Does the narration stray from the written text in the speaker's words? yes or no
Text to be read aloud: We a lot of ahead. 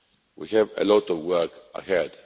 yes